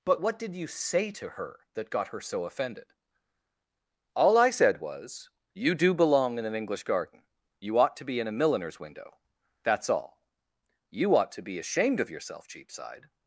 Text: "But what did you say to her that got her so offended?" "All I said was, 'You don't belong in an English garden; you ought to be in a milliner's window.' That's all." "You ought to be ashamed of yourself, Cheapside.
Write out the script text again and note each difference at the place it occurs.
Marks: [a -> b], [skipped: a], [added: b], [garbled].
"But what did you say to her that got her so offended?" "All I said was, 'You [don't -> do] belong in an English garden; you ought to be in a milliner's window.' That's all." "You ought to be ashamed of yourself, Cheapside.